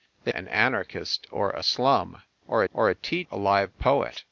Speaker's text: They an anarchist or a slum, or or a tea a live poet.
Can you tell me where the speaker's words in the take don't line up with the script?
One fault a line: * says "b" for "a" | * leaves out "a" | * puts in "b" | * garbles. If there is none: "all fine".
all fine